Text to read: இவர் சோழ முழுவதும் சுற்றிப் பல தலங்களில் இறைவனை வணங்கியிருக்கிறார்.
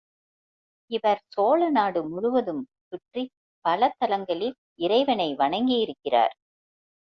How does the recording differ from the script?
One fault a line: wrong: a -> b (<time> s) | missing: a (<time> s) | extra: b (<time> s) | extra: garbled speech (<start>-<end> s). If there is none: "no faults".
extra: நாடு (1.7 s)